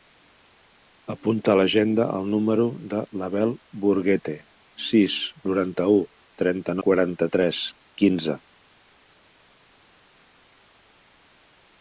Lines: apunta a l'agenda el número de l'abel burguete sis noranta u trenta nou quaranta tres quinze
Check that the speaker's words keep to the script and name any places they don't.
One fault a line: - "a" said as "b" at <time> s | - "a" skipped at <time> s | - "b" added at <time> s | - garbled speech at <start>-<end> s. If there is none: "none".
- "nou" skipped at 6.8 s